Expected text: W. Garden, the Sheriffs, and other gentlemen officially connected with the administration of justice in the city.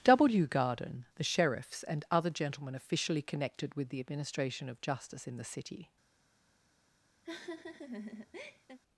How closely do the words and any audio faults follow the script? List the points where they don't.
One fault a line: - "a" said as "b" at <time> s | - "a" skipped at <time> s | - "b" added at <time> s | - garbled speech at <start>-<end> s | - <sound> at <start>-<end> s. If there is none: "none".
- laugh at 7.2-8.8 s